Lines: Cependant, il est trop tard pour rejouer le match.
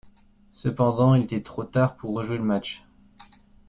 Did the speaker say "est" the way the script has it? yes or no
no